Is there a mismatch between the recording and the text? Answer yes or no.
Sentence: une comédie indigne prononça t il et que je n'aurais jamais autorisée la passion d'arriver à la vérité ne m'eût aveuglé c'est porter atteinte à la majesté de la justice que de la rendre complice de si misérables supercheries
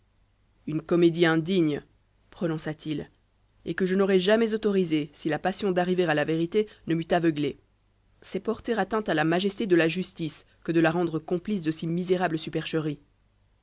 yes